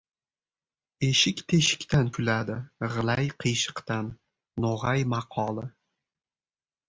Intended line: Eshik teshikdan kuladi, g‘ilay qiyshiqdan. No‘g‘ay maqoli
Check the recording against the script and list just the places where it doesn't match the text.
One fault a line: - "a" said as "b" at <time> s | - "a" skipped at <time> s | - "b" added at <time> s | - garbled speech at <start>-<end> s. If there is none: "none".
none